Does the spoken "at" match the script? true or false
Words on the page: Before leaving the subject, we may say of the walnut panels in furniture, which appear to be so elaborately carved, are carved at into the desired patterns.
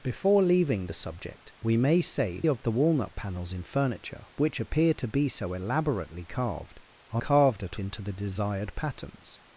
true